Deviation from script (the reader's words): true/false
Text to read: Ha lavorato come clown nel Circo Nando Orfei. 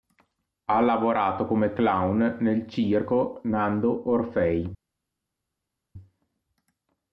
false